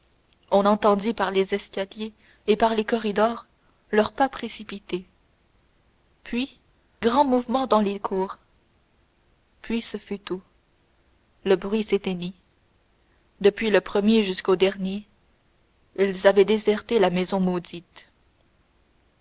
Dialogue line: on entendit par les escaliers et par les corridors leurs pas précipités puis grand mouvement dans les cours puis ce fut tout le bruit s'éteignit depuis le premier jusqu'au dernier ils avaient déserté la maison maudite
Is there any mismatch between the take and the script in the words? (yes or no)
no